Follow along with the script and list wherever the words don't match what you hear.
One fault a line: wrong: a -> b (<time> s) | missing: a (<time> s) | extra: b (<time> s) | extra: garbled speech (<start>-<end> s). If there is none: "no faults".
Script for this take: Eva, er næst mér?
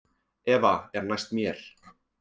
no faults